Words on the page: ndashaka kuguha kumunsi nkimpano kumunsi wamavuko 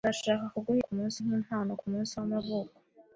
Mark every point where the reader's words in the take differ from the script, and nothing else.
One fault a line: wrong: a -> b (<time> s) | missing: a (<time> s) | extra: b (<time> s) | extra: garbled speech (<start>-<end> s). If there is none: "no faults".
no faults